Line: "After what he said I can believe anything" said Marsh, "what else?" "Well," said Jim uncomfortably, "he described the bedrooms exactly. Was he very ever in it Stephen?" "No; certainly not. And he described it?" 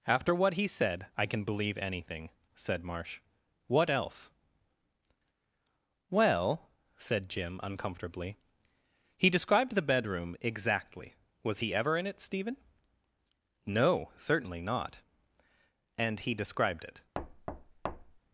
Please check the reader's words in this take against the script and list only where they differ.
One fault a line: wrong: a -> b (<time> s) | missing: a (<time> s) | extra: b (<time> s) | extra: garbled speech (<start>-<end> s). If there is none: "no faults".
wrong: bedrooms -> bedroom (9.9 s)
missing: very (11.7 s)